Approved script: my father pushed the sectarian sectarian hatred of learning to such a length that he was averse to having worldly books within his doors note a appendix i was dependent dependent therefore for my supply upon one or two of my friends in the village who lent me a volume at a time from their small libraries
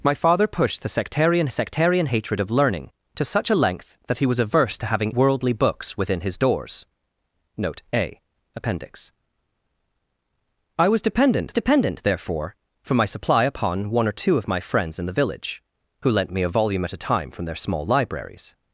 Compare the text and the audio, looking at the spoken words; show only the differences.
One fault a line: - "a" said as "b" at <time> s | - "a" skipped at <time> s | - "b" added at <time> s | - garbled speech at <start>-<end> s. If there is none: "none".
none